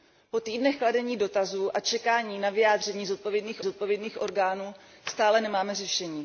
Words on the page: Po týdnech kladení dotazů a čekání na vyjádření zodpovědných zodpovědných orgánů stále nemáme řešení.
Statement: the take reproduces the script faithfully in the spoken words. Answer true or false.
true